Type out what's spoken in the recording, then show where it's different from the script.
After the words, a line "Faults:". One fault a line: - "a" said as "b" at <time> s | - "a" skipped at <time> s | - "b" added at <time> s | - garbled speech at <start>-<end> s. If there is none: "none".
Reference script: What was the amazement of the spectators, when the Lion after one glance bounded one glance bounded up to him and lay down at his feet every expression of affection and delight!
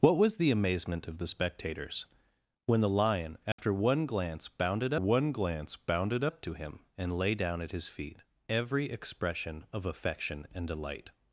What was the amazement of the spectators, when the Lion after one glance bounded one glance bounded up to him and lay down at his feet every expression of affection and delight!
Faults:
none